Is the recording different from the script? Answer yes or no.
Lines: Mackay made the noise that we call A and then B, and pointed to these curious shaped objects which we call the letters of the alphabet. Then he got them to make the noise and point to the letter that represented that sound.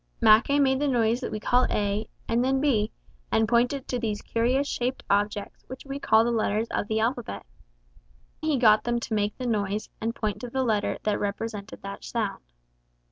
yes